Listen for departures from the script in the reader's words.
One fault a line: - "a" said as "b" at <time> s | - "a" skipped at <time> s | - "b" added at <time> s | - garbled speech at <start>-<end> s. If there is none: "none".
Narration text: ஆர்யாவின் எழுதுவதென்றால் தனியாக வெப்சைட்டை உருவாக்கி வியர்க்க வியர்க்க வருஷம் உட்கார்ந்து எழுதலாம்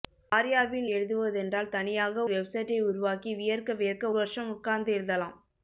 none